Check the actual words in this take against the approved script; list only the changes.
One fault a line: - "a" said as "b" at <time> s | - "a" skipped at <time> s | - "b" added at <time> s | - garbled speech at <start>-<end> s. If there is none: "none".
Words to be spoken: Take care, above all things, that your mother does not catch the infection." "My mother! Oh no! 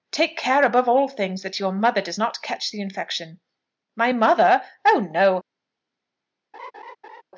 none